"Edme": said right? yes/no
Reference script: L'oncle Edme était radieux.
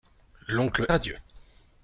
no